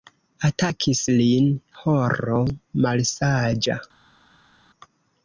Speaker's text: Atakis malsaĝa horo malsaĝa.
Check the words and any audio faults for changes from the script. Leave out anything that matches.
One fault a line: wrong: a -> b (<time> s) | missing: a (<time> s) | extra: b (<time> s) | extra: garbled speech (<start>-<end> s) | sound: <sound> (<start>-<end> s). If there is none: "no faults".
wrong: malsaĝa -> lin (1.1 s)